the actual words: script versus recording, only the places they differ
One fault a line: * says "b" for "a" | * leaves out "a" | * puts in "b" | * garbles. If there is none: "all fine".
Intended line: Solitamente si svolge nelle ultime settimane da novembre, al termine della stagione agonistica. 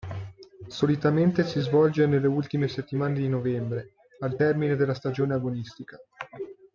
* says "di" for "da"